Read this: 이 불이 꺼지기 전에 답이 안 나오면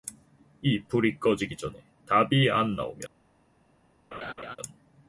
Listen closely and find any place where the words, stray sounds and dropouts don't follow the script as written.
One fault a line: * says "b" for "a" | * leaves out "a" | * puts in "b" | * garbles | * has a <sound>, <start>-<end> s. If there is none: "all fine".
* has a laugh, 4.1-4.6 s